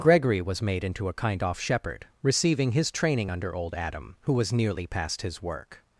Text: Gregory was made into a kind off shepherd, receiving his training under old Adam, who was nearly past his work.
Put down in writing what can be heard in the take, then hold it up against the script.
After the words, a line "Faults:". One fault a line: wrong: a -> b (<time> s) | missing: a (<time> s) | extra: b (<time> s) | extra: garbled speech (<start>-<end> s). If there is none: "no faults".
Gregory was made into a kind off shepherd, receiving his training under old Adam, who was nearly past his work.
Faults:
no faults